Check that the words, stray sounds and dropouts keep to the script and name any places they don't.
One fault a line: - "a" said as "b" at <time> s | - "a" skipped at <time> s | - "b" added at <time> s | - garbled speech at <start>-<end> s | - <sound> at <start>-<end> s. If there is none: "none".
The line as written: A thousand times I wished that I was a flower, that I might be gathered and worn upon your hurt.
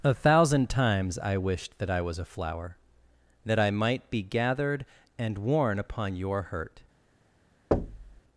- thud at 7.7-8.2 s